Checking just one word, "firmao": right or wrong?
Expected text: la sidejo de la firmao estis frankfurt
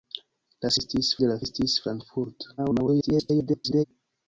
wrong